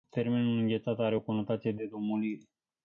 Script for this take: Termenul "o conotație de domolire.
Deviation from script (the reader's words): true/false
true